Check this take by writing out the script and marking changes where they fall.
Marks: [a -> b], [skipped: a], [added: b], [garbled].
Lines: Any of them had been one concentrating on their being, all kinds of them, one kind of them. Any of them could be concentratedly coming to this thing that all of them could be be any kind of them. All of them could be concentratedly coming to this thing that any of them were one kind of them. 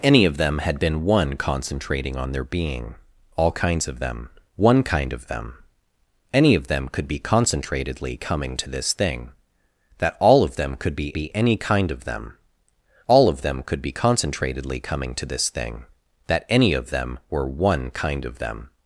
Any of them had been one concentrating on their being, all kinds of them, one kind of them. Any of them could be concentratedly coming to this thing that all of them could be be any kind of them. All of them could be concentratedly coming to this thing that any of them were one kind of them.